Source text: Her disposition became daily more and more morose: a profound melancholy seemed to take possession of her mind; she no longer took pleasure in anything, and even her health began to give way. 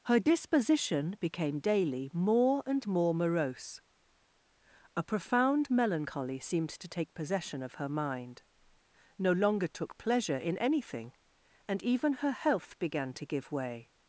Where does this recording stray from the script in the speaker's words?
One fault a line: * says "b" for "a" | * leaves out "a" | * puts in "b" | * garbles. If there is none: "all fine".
* leaves out "she"